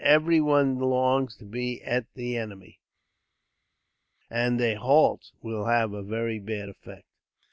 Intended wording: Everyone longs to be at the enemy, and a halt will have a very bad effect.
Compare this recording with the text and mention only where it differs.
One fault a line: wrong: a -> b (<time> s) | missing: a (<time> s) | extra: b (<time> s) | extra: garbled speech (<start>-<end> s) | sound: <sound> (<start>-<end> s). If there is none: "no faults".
no faults